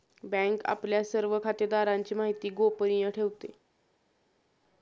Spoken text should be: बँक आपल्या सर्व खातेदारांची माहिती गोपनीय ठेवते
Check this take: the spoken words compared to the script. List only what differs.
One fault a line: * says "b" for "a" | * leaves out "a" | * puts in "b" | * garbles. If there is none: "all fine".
all fine